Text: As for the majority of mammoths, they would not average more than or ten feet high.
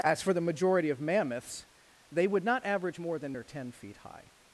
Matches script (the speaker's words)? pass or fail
pass